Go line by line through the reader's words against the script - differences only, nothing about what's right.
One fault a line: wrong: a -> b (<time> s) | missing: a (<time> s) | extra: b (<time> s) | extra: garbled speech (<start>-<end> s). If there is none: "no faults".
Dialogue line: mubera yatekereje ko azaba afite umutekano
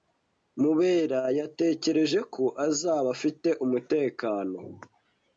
no faults